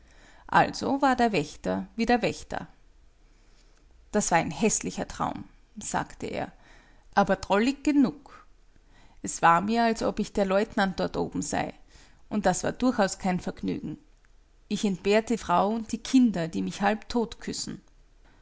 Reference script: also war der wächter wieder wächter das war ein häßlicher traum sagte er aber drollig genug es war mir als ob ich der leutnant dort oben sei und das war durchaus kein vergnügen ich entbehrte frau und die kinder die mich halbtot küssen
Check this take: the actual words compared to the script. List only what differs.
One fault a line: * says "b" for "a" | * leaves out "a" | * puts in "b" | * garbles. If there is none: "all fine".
all fine